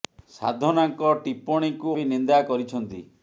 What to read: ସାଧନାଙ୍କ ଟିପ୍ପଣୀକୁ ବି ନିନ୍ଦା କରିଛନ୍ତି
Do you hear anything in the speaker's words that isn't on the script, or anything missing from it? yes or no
no